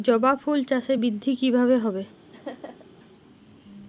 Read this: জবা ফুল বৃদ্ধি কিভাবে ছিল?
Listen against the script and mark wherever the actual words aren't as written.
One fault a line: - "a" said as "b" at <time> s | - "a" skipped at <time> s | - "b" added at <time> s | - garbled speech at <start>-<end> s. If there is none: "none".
- "চাষে" added at 0.6 s
- "ছিল" said as "হবে" at 1.8 s